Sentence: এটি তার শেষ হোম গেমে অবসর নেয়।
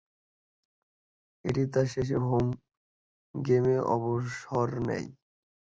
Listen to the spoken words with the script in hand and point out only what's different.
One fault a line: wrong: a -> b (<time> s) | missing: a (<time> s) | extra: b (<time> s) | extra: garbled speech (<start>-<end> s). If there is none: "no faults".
no faults